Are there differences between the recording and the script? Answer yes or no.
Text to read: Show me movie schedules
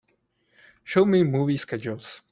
no